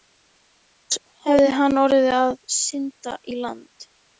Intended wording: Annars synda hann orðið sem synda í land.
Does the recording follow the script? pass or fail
fail